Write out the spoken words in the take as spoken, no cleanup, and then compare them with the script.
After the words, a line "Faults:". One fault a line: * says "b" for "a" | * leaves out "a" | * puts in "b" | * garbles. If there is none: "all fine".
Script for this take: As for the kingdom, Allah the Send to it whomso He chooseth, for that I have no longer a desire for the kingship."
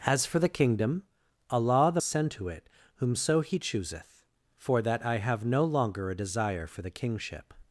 As for the kingdom, Allah the Send to it whomso He chooseth, for that I have no longer a desire for the kingship."
Faults:
all fine